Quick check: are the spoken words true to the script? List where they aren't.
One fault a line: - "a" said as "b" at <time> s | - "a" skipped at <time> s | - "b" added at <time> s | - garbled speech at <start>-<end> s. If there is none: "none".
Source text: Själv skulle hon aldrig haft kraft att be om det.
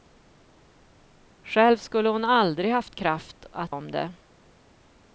- "be" skipped at 3.8 s